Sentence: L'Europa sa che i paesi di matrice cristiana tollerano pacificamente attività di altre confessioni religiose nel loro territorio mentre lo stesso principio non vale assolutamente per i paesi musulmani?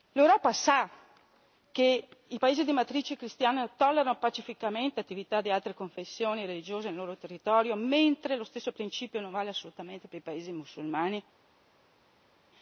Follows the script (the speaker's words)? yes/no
yes